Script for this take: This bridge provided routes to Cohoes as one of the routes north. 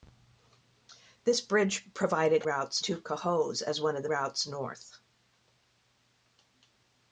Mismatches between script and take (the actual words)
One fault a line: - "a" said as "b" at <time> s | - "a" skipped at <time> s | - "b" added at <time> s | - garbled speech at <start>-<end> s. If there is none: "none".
none